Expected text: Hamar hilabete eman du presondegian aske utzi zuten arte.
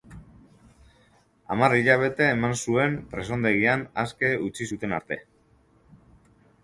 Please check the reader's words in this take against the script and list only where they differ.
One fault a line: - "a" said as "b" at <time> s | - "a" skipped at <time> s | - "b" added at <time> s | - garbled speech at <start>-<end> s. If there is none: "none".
- "du" said as "zuen" at 2.6 s